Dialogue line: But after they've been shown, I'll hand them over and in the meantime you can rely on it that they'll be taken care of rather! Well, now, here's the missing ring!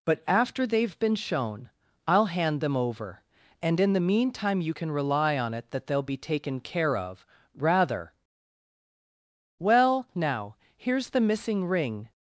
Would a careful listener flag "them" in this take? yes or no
no